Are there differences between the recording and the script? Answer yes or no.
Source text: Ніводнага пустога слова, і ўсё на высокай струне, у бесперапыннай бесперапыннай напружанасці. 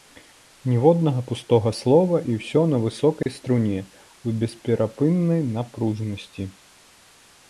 yes